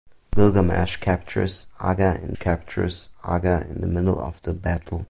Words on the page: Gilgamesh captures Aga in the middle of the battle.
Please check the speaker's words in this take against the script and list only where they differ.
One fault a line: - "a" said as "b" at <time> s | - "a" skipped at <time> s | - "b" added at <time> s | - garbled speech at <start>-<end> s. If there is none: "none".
- "captures Aga in" added at 2.4 s